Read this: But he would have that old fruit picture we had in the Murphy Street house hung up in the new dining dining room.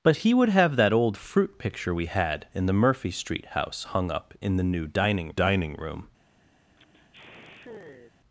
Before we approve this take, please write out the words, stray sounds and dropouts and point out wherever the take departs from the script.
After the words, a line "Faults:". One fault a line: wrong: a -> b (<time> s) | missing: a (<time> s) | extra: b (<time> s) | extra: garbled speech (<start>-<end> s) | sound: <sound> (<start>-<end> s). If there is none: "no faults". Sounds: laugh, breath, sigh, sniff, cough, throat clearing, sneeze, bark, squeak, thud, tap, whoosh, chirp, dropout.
But he would have that old fruit picture we had in the Murphy Street house hung up in the new dining dining room.
Faults:
sound: sigh (6.7-8.1 s)